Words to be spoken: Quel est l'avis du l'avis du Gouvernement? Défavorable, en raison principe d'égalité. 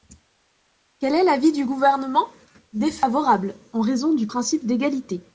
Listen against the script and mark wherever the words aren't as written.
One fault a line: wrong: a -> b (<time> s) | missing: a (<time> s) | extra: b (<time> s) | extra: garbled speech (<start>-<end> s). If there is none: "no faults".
missing: l'avis du (1.6 s)
extra: du (4.1 s)